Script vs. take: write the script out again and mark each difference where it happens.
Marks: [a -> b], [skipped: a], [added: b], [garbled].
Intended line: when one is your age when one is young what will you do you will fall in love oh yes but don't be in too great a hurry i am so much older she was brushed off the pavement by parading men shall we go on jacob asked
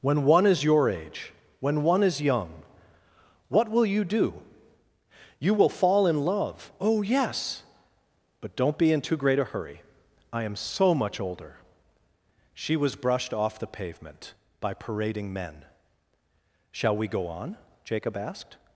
when one is your age when one is young what will you do you will fall in love oh yes but don't be in too great a hurry i am so much older she was brushed off the pavement by parading men shall we go on jacob asked